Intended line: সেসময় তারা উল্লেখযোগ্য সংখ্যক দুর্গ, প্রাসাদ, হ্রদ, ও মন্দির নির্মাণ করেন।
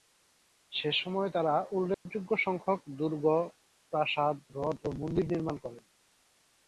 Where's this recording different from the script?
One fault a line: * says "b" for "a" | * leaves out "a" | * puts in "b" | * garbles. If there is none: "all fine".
all fine